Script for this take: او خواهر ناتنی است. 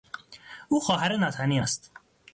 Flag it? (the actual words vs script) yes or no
no